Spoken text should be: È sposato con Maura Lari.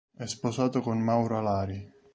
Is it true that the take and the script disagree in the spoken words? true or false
false